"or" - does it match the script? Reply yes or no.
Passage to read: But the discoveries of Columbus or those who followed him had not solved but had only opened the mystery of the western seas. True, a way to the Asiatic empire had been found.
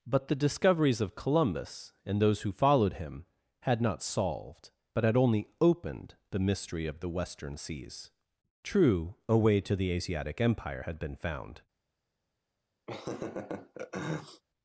no